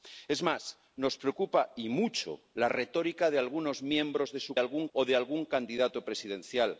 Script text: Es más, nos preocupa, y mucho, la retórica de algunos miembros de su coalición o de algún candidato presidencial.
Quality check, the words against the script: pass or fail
fail